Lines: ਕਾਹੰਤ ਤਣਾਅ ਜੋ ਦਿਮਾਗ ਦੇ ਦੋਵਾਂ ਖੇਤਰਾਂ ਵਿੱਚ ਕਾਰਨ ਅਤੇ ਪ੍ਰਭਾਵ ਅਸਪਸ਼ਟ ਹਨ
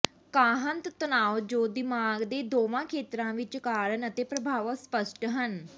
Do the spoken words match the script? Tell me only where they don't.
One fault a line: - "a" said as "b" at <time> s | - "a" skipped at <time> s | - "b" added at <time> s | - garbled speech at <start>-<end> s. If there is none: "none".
none